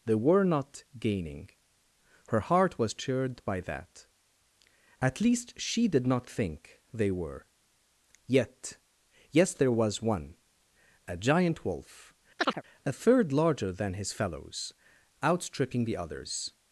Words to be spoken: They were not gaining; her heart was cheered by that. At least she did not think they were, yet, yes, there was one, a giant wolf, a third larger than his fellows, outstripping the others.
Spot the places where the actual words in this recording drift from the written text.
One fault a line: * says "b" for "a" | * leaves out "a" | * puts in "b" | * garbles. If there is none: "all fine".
all fine